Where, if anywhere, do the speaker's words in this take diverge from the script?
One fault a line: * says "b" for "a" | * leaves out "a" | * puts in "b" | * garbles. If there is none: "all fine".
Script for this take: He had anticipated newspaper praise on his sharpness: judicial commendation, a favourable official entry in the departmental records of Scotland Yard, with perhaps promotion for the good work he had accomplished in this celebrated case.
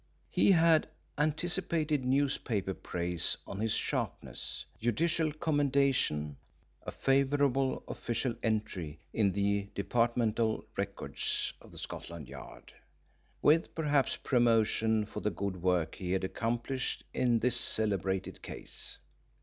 all fine